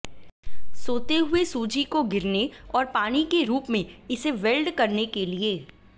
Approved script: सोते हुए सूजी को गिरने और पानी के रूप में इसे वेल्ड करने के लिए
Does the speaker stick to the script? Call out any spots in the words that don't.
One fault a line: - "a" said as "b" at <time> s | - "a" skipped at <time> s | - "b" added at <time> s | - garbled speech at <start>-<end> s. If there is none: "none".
none